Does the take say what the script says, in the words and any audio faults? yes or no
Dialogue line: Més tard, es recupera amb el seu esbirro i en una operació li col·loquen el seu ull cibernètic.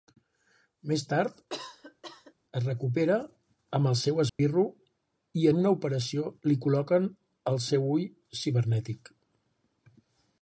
no